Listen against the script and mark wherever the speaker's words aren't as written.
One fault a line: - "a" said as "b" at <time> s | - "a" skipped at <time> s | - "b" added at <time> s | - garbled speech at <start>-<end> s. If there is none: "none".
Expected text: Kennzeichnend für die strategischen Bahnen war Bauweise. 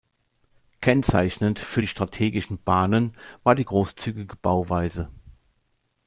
- "die großzügige" added at 3.5 s